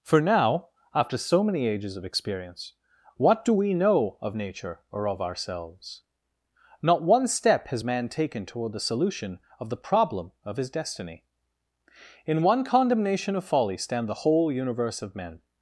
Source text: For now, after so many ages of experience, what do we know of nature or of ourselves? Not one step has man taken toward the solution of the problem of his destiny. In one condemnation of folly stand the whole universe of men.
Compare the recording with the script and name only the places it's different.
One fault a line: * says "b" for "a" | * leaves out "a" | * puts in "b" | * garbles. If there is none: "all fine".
all fine